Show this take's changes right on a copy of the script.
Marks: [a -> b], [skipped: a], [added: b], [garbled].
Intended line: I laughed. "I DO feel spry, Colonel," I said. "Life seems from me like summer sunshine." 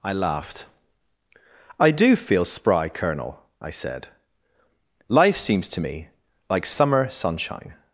I laughed. "I DO feel spry, Colonel," I said. "Life seems [from -> to] me like summer sunshine."